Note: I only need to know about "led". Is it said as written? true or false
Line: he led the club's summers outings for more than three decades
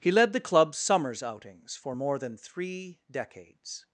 true